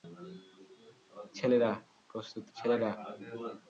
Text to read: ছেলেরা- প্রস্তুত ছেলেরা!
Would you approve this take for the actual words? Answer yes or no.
yes